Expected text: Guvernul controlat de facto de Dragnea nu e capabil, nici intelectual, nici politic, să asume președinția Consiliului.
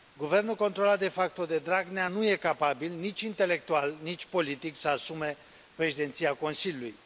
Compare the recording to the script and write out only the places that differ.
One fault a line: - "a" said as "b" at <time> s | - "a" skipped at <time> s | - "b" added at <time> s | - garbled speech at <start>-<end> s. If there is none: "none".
none